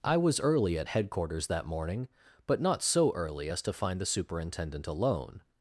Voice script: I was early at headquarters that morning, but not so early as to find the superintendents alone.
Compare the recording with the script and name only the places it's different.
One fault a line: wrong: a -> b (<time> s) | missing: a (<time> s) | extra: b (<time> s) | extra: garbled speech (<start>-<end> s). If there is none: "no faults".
wrong: superintendents -> superintendent (4.0 s)